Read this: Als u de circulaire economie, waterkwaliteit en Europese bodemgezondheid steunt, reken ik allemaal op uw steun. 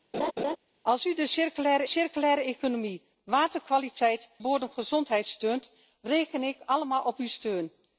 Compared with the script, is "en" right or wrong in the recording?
wrong